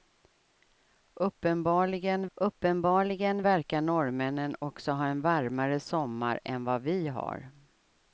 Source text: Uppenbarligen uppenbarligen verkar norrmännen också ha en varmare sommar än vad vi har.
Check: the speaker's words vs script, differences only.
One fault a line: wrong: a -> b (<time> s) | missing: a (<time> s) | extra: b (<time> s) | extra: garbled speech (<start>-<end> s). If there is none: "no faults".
no faults